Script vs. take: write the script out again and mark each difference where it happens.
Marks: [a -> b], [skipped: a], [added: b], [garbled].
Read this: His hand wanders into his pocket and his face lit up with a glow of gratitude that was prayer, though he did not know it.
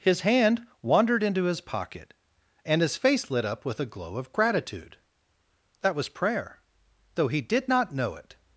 His hand [wanders -> wandered] into his pocket and his face lit up with a glow of gratitude that was prayer, though he did not know it.